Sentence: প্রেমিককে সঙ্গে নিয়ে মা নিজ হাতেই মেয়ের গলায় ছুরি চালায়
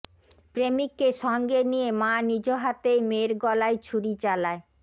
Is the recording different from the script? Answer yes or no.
no